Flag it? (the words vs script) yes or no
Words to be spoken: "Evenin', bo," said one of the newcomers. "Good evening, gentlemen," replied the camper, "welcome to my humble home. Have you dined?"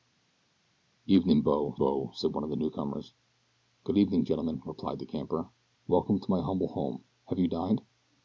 yes